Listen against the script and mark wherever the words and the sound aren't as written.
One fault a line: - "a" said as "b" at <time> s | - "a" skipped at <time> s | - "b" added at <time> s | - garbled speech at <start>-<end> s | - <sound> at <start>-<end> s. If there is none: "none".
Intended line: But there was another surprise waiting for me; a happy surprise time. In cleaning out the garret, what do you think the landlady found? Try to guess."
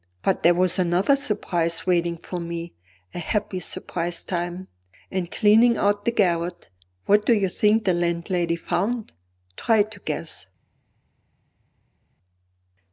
none